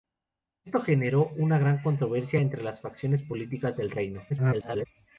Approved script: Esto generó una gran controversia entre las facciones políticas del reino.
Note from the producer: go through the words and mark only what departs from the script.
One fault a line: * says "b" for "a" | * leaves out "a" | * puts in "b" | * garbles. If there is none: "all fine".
* garbles